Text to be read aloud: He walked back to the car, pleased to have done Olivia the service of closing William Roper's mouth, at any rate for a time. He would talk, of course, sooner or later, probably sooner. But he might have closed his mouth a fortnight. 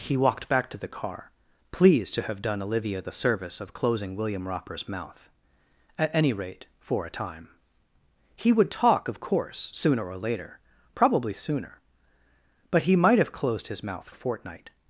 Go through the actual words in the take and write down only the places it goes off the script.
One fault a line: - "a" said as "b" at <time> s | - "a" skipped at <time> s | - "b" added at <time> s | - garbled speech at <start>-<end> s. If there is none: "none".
none